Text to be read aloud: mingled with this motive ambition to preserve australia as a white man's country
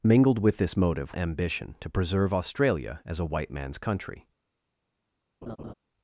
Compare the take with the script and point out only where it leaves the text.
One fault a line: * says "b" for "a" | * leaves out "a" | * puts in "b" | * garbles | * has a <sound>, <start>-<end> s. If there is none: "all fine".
* has a laugh, 5.4-5.7 s